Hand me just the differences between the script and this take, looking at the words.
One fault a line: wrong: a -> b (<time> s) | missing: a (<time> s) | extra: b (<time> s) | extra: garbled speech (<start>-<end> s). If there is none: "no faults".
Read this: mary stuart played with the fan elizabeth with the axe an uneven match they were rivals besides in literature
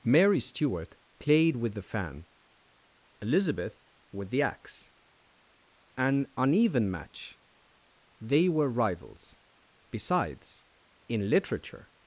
no faults